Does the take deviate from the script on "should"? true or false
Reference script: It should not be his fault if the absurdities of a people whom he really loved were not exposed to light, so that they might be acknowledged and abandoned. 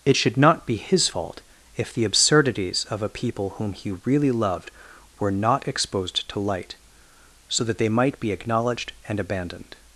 false